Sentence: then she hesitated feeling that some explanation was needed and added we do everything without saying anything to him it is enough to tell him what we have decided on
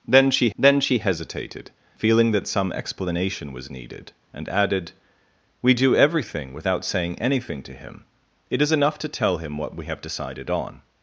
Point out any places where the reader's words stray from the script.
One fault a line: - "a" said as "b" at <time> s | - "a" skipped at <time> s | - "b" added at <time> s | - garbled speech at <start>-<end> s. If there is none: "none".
- "then she" added at 0.6 s